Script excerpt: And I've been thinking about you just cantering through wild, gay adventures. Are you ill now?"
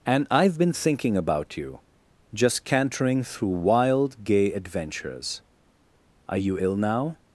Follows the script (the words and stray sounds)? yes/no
yes